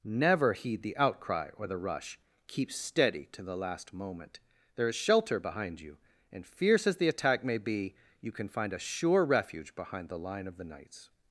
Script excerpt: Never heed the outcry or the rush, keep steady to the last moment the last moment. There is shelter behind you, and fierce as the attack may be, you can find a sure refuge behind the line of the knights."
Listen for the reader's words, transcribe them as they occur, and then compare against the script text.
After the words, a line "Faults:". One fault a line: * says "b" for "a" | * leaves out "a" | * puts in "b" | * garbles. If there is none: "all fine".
Never heed the outcry or the rush, keep steady to the last moment. There is shelter behind you, and fierce as the attack may be, you can find a sure refuge behind the line of the knights."
Faults:
* leaves out "the last moment"